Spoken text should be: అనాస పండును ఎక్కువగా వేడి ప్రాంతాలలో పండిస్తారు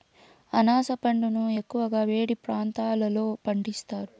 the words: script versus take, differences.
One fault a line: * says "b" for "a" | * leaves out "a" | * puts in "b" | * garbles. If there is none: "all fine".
all fine